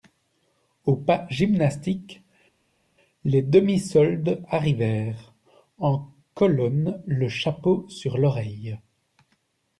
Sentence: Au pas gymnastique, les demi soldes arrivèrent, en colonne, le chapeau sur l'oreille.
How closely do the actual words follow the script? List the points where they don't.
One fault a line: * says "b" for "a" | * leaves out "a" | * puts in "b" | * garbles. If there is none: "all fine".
all fine